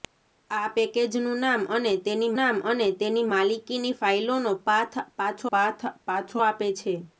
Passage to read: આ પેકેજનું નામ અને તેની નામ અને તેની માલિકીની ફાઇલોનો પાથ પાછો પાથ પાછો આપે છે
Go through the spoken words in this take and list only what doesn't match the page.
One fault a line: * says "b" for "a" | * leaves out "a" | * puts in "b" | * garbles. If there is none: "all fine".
all fine